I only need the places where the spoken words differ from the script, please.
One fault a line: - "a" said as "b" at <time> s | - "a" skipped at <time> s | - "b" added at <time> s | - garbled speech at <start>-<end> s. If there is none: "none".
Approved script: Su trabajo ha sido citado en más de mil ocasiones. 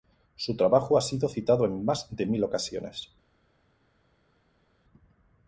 none